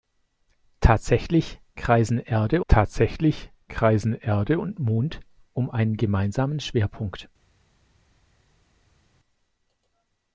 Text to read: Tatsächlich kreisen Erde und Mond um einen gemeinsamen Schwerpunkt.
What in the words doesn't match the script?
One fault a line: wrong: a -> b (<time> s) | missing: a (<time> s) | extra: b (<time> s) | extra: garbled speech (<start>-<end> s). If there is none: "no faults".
extra: tatsächlich kreisen Erde (2.7 s)